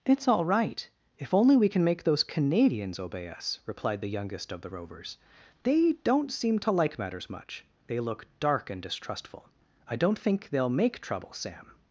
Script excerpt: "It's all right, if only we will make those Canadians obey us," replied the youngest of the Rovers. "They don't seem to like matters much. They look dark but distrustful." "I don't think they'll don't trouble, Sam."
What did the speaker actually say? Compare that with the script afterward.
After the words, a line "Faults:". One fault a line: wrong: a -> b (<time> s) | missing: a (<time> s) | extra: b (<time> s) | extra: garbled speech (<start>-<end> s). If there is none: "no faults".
"It's all right, if only we can make those Canadians obey us," replied the youngest of the Rovers. "They don't seem to like matters much. They look dark and distrustful." "I don't think they'll make trouble, Sam."
Faults:
wrong: will -> can (1.7 s)
wrong: but -> and (8.7 s)
wrong: don't -> make (10.7 s)